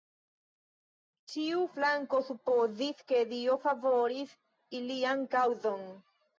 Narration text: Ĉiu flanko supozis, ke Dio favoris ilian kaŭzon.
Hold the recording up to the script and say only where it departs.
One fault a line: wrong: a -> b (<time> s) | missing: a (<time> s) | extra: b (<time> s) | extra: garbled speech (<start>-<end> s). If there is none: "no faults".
no faults